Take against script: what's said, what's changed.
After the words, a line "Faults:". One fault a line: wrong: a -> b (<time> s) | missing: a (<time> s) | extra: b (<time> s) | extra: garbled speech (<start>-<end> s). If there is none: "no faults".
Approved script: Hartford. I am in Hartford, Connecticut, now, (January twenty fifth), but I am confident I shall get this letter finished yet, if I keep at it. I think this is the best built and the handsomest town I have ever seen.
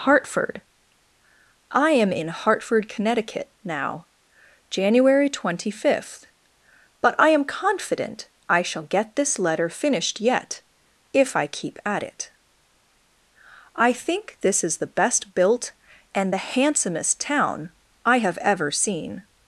Hartford. I am in Hartford, Connecticut, now, (January twenty fifth), but I am confident I shall get this letter finished yet, if I keep at it. I think this is the best built and the handsomest town I have ever seen.
Faults:
no faults